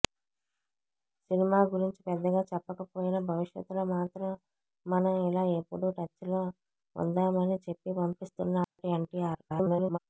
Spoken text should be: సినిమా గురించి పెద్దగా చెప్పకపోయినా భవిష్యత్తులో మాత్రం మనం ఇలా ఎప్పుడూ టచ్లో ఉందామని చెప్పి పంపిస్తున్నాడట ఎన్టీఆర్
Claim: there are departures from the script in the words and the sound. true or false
true